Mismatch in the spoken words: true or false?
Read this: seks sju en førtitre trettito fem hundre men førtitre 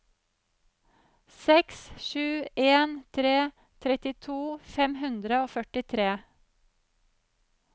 true